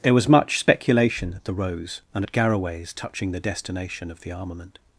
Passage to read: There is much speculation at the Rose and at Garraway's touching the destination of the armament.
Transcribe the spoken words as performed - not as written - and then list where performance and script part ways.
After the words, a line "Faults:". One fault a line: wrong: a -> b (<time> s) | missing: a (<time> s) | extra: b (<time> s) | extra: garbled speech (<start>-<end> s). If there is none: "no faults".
There was much speculation at the Rose and at Garraway's touching the destination of the armament.
Faults:
wrong: is -> was (0.1 s)